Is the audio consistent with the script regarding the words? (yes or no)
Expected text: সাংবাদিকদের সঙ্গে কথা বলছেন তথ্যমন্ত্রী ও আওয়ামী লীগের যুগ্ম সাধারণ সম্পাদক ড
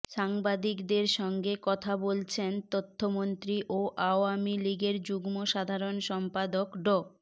yes